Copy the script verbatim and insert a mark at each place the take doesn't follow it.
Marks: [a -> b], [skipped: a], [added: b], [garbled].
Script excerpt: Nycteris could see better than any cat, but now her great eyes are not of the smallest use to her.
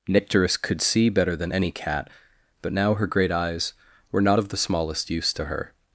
Nycteris could see better than any cat, but now her great eyes [are -> were] not of the smallest use to her.